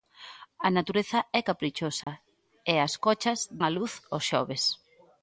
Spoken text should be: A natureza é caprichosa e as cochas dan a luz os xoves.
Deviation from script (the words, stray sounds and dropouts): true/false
true